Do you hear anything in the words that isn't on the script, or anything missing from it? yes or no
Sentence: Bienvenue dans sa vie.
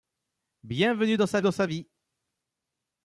yes